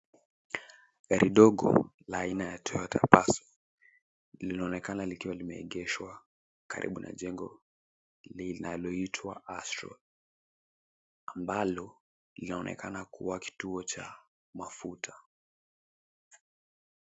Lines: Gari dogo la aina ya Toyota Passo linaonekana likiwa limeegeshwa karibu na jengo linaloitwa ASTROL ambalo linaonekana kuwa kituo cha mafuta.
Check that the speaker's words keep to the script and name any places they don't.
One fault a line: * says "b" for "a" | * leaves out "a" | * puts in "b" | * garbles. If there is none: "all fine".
all fine